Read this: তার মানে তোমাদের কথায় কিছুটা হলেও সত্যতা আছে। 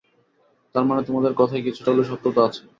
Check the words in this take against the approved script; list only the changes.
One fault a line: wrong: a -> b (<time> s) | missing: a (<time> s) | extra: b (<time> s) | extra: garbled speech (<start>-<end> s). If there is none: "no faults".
no faults